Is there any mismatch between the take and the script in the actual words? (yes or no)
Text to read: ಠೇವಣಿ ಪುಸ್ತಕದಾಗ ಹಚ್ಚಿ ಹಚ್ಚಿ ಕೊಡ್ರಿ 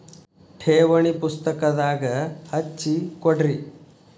yes